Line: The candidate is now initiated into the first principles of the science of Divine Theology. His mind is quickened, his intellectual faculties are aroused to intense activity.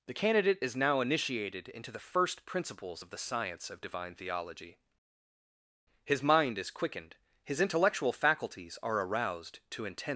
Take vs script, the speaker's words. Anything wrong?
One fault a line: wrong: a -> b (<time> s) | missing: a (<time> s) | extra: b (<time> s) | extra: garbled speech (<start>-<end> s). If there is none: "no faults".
missing: activity (10.0 s)